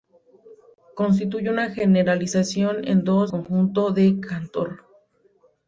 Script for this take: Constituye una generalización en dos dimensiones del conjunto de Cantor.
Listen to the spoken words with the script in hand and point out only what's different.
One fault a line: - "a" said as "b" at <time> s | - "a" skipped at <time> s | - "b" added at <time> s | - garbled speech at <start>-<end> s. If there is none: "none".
- "dimensiones del" skipped at 3.3 s